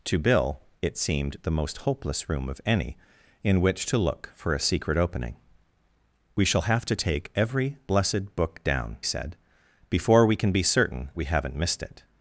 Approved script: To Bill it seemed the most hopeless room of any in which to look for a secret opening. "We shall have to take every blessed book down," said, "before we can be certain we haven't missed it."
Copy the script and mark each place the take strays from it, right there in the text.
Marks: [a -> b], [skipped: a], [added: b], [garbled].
To Bill it seemed the most hopeless room of any in which to look for a secret opening. "We shall have to take every blessed book down," said, "before we can be certain we haven't missed it."